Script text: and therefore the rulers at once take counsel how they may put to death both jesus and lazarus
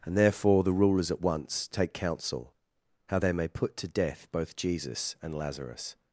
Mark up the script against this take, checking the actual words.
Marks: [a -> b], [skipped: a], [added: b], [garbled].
and therefore the rulers at once take counsel how they may put to death both jesus and lazarus